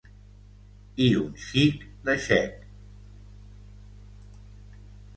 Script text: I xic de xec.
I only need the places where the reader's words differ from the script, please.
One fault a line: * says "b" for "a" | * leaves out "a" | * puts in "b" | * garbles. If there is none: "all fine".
* puts in "un"